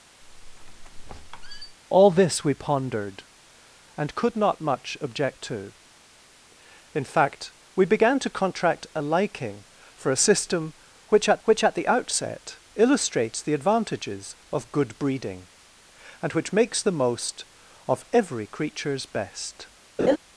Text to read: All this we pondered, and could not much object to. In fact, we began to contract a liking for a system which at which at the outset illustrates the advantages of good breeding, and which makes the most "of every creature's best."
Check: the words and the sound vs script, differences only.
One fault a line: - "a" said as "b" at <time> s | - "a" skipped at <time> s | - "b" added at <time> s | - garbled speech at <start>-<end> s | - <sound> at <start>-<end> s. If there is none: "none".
- squeak at 0.2-1.8 s
- laugh at 20.0-20.2 s